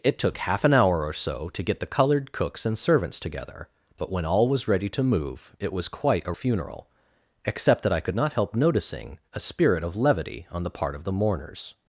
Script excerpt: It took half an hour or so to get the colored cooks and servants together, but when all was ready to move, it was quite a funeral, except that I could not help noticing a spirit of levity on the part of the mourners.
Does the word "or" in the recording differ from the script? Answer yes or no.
no